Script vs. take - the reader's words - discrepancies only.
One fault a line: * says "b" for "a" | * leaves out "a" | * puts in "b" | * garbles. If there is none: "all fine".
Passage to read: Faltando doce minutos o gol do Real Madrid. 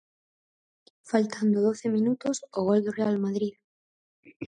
all fine